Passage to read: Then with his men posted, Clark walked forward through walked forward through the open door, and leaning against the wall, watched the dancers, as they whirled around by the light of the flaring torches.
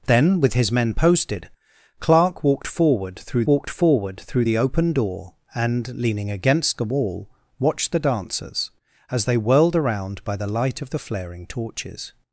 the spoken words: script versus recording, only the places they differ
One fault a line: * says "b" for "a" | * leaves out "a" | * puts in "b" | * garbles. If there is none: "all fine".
all fine